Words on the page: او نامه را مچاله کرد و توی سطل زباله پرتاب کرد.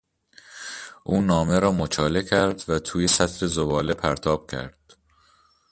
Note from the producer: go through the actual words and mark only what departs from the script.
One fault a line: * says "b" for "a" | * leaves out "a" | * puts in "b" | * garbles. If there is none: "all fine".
all fine